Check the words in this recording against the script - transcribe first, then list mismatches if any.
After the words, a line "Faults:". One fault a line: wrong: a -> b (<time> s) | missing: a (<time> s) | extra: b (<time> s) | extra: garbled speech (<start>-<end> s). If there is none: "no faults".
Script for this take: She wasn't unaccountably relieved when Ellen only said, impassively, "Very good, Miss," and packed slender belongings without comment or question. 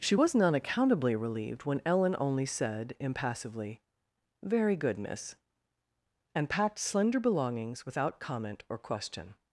She wasn't unaccountably relieved when Ellen only said, impassively, "Very good, Miss," and packed slender belongings without comment or question.
Faults:
no faults